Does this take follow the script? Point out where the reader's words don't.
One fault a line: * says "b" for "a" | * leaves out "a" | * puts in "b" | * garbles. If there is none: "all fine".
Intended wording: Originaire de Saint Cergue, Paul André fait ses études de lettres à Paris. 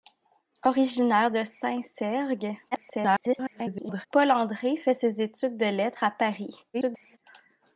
* garbles
* garbles